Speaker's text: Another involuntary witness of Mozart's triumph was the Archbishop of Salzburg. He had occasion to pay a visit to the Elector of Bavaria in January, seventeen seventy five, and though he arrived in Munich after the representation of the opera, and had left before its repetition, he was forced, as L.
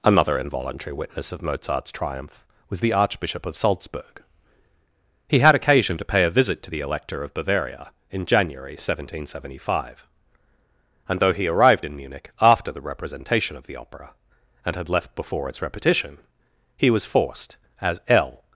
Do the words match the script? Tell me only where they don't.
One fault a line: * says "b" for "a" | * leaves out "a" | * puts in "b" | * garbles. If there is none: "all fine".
all fine